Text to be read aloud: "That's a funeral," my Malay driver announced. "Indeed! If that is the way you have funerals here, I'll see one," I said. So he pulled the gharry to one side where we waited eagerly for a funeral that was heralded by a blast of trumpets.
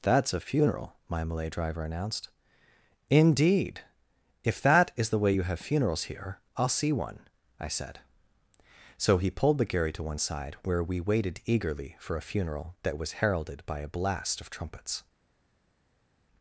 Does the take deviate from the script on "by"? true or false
false